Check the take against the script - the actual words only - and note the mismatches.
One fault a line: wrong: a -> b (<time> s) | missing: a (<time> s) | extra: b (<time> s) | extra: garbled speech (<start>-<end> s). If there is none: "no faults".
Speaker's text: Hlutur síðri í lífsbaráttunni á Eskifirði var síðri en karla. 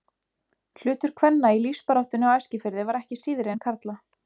wrong: síðri -> kvenna (1.2 s)
extra: ekki (3.0 s)